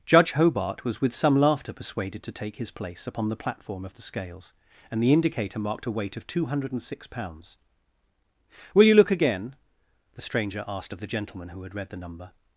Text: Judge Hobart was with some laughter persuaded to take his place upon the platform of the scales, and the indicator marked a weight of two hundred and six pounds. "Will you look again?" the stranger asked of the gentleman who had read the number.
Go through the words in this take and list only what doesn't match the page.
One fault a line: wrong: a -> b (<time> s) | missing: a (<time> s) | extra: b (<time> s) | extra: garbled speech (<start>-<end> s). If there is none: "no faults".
no faults